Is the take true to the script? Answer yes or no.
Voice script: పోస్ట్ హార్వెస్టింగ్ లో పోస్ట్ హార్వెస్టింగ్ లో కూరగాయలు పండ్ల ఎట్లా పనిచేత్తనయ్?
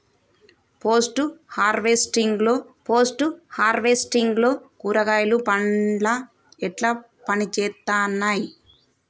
yes